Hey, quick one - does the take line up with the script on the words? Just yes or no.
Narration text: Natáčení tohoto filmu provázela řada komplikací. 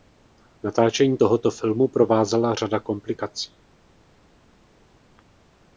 yes